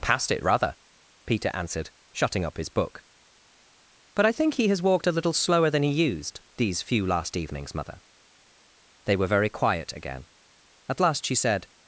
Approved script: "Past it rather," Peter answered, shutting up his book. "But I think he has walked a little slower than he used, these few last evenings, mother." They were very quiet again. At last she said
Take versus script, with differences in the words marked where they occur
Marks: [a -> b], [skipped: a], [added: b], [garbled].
"Past it rather," Peter answered, shutting up his book. "But I think he has walked a little slower than he used, these few last evenings, mother." They were very quiet again. At last she said